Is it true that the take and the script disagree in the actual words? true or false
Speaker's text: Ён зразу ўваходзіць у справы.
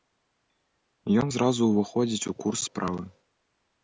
true